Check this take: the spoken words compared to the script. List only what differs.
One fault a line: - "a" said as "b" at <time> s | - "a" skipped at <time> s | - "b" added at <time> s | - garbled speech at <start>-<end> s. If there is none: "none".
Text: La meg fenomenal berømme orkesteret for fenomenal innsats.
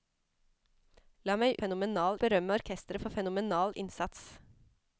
none